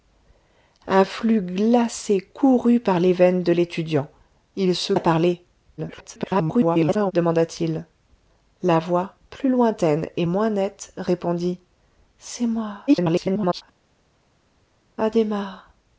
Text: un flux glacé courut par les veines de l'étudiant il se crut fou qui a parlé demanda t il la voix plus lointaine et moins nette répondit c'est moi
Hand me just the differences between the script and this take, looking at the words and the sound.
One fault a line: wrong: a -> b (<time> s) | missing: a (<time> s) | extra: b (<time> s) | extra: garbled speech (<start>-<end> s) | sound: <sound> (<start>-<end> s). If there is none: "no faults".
missing: crut fou qui (4.9 s)
extra: garbled speech (5.8-7.1 s)
extra: garbled speech (12.9-13.6 s)